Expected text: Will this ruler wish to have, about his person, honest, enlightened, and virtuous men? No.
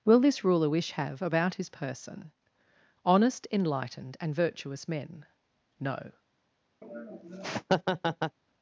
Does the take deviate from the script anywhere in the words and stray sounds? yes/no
yes